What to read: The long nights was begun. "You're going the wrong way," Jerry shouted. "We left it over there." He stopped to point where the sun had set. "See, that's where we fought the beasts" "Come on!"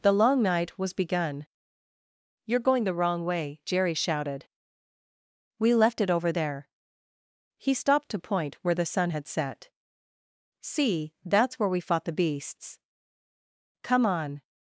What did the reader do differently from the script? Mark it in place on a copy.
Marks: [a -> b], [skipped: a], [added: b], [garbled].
The long [nights -> night] was begun. "You're going the wrong way," Jerry shouted. "We left it over there." He stopped to point where the sun had set. "See, that's where we fought the beasts" "Come on!"